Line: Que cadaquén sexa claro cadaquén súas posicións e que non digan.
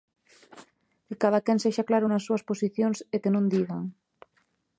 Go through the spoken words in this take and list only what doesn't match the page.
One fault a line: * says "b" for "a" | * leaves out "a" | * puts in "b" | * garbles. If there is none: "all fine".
* says "nas" for "cadaquén"